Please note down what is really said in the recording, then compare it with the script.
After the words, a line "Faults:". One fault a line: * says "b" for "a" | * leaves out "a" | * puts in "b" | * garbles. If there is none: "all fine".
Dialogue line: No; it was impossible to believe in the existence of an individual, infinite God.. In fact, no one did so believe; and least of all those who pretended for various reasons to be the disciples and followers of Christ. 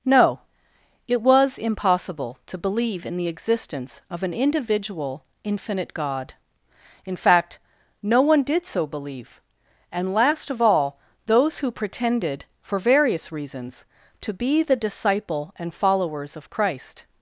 No; it was impossible to believe in the existence of an individual, infinite God.. In fact, no one did so believe; and last of all those who pretended for various reasons to be the disciple and followers of Christ.
Faults:
* says "last" for "least"
* says "disciple" for "disciples"